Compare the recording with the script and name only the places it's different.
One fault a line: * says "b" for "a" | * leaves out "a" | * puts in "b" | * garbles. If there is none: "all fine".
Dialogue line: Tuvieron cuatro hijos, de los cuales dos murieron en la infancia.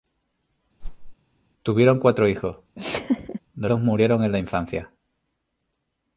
* leaves out "los cuales"